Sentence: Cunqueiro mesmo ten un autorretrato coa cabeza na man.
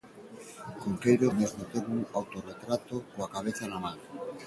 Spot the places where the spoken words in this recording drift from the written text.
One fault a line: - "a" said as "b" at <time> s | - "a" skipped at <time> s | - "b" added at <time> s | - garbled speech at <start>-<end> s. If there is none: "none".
none